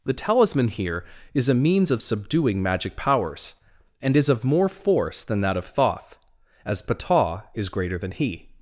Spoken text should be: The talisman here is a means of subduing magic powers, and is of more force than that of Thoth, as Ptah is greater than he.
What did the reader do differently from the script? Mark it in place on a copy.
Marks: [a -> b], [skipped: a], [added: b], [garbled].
The talisman here is a means of subduing magic powers, and is of more force than that of Thoth, as Ptah is greater than he.